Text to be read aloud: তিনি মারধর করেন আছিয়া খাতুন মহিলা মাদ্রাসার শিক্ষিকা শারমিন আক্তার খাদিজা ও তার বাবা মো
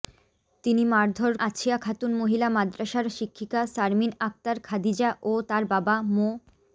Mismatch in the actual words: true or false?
true